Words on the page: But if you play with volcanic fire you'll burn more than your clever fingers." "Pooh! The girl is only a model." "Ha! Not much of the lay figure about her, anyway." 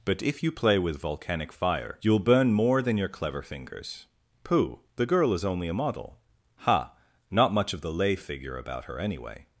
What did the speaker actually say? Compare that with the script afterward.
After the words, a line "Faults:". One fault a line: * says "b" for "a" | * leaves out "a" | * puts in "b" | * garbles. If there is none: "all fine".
But if you play with volcanic fire you'll burn more than your clever fingers." "Pooh! The girl is only a model." "Ha! Not much of the lay figure about her, anyway."
Faults:
all fine